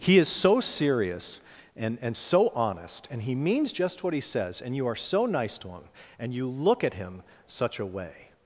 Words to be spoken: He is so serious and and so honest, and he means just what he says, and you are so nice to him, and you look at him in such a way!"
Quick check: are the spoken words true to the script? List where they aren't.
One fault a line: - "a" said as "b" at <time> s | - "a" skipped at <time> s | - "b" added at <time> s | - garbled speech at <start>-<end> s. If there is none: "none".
- "in" skipped at 7.2 s